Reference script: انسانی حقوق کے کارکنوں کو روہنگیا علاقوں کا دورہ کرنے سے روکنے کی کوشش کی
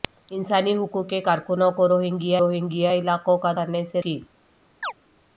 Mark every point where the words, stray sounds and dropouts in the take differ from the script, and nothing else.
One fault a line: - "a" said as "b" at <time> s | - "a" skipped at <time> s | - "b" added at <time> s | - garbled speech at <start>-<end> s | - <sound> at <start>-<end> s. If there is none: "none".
- "روہنگیا" added at 2.4 s
- "دورہ" skipped at 3.5 s
- "روکنے کی کوشش" skipped at 4.0 s
- chirp at 4.8-4.9 s